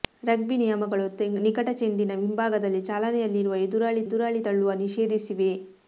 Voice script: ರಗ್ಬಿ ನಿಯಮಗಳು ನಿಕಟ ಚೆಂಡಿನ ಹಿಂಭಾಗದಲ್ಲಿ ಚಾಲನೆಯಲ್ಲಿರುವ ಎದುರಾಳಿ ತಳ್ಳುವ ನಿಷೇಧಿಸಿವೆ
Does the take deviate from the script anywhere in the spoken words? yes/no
yes